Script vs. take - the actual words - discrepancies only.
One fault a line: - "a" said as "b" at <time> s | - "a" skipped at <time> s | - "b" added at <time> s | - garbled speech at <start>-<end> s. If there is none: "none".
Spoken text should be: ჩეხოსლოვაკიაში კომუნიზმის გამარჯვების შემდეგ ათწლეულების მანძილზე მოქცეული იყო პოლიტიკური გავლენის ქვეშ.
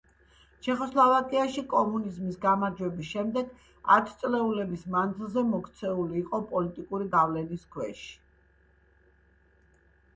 none